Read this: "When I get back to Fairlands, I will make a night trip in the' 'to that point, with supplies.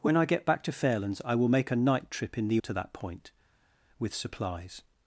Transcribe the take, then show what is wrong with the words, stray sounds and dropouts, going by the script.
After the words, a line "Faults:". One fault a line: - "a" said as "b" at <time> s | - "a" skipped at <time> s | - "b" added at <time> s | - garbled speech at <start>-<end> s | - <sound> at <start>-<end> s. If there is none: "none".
"When I get back to Fairlands, I will make a night trip in the' 'to that point, with supplies.
Faults:
none